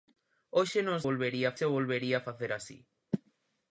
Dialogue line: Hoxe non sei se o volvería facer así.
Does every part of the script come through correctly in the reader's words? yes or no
no